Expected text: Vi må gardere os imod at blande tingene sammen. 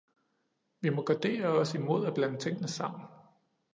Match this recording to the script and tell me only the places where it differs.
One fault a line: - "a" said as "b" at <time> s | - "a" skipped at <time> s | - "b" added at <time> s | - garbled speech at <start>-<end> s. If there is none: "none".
none